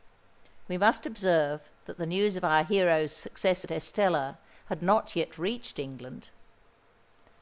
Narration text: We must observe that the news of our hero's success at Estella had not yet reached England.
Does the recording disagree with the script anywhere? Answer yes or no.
no